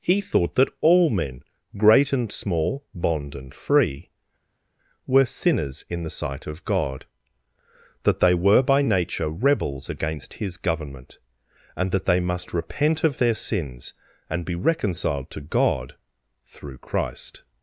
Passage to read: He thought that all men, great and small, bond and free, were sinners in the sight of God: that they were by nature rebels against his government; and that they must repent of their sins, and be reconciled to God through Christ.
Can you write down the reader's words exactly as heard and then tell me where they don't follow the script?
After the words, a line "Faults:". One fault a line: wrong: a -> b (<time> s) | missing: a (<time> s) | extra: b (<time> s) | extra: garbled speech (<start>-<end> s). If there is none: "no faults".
He thought that all men, great and small, bond and free, were sinners in the sight of God: that they were by nature rebels against his government; and that they must repent of their sins, and be reconciled to God through Christ.
Faults:
no faults